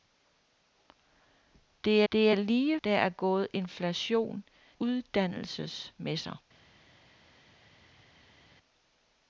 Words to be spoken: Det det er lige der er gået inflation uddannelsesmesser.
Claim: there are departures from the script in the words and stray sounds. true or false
false